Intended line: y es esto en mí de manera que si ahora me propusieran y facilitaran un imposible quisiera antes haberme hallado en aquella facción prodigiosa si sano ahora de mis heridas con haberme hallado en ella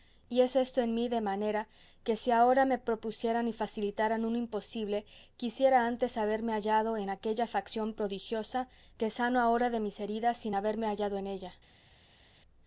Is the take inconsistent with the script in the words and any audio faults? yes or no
yes